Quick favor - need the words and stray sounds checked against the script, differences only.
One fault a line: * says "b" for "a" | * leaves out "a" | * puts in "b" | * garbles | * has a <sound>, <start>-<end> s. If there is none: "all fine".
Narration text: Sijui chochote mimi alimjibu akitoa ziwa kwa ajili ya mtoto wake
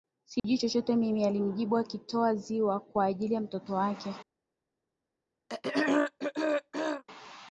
* has a dropout, 0.4-0.4 s
* has a throat clearing, 5.5-7.0 s